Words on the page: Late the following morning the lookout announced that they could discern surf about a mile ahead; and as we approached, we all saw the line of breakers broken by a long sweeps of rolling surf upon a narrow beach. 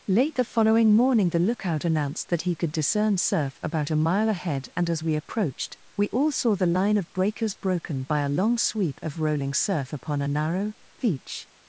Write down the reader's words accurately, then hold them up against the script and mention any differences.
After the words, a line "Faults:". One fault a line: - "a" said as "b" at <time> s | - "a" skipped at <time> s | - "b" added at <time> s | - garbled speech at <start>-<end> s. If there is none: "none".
Late the following morning the lookout announced that he could discern surf about a mile ahead; and as we approached, we all saw the line of breakers broken by a long sweep of rolling surf upon a narrow beach.
Faults:
- "they" said as "he" at 2.4 s
- "sweeps" said as "sweep" at 8.6 s